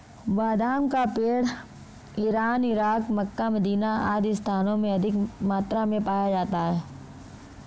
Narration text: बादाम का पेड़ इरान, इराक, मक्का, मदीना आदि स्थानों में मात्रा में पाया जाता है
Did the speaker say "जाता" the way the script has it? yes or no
yes